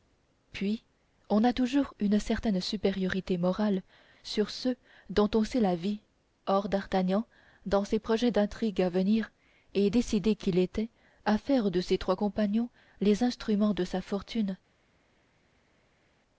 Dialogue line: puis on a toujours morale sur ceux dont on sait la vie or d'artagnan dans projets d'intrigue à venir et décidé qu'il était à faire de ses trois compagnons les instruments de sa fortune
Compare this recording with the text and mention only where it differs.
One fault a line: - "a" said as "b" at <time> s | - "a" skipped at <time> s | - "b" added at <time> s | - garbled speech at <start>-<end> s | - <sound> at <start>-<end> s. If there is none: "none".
- "une certaine supériorité" added at 2.0 s
- "ses" added at 7.8 s